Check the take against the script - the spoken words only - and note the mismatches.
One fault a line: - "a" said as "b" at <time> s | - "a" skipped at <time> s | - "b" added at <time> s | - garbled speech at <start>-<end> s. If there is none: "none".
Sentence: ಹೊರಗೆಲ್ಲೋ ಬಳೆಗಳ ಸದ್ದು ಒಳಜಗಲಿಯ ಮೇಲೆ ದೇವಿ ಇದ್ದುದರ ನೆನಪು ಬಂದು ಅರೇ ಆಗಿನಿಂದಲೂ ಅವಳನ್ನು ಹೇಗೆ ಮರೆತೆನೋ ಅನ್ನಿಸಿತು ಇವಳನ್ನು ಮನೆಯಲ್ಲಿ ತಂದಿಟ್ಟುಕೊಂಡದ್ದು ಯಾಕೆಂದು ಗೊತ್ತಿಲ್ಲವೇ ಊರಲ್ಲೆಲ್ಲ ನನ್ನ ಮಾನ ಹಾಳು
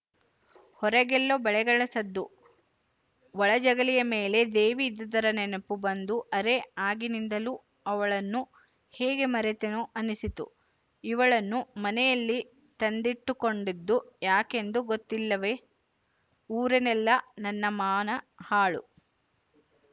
none